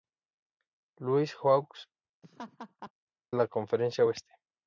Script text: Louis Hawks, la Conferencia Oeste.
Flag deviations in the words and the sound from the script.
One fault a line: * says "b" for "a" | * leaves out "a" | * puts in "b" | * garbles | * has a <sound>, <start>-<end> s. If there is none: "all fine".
* has a laugh, 2.2-2.9 s